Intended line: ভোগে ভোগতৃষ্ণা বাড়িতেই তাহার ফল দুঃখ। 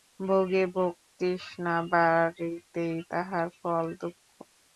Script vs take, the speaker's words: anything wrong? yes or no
no